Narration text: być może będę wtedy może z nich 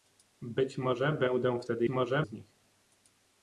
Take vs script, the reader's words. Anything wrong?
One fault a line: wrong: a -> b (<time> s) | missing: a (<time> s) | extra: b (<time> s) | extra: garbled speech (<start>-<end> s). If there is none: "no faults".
no faults